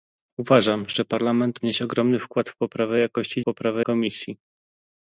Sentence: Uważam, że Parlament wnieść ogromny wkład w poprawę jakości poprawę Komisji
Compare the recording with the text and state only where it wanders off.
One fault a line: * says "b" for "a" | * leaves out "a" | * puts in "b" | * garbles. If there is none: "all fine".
all fine